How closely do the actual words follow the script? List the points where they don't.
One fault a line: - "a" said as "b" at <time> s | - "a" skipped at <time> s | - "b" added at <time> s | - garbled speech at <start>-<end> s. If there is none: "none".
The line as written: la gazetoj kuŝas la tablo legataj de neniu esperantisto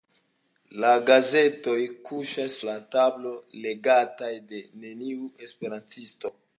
none